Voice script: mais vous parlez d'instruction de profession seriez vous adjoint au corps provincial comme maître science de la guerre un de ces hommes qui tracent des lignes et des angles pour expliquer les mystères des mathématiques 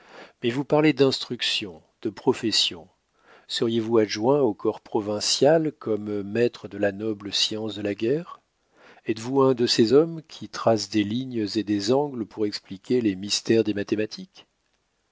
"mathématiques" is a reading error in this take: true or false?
false